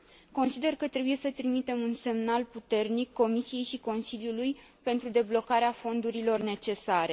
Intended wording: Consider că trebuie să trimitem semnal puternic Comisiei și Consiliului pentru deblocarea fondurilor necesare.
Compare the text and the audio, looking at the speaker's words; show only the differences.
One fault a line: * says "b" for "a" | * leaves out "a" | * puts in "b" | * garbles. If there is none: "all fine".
* puts in "un"